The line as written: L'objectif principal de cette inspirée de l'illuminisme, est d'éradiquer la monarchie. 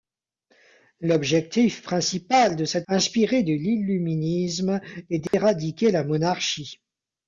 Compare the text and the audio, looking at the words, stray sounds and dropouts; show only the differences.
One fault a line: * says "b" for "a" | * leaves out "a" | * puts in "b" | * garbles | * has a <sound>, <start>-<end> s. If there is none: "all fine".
* has a dropout, 5.3-5.3 s